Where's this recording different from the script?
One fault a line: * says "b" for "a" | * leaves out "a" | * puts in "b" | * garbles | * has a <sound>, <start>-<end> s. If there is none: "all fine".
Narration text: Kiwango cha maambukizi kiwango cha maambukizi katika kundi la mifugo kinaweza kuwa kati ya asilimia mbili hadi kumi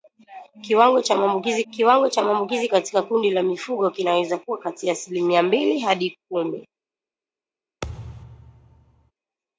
* has a thud, 7.8-9.1 s